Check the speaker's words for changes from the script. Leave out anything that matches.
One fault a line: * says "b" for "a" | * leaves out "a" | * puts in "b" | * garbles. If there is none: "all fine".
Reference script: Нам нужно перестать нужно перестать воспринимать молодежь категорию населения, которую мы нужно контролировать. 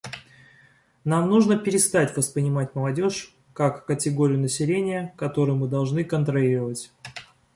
* leaves out "нужно перестать"
* puts in "как"
* says "должны" for "нужно"